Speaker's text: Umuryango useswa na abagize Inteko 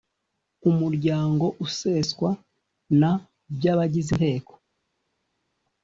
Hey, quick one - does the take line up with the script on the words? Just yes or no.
no